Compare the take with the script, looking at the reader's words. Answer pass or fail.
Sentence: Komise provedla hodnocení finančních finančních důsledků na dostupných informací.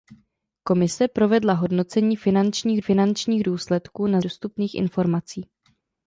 pass